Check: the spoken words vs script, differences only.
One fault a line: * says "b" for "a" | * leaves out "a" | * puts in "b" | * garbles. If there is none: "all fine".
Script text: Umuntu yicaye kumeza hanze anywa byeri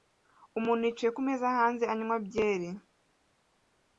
all fine